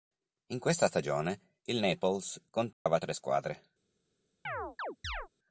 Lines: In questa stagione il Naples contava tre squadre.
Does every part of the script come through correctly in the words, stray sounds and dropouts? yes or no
no